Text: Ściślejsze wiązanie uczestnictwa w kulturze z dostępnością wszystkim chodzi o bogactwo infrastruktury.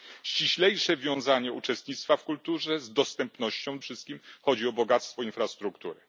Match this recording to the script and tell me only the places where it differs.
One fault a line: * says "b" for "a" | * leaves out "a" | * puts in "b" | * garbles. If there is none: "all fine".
all fine